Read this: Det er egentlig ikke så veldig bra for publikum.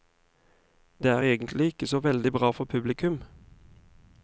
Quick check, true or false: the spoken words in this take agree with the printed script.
true